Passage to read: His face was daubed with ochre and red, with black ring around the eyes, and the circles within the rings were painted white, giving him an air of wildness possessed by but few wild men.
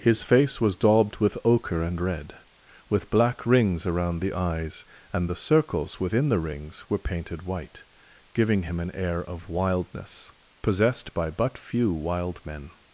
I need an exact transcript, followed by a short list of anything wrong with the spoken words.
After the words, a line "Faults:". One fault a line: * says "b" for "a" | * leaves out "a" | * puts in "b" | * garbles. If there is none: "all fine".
His face was daubed with ochre and red, with black rings around the eyes, and the circles within the rings were painted white, giving him an air of wildness possessed by but few wild men.
Faults:
* says "rings" for "ring"